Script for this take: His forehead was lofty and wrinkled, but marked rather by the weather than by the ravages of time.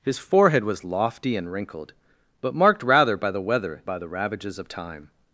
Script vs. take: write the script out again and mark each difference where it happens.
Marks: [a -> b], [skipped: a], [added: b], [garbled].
His forehead was lofty and wrinkled, but marked rather by the weather [skipped: than] by the ravages of time.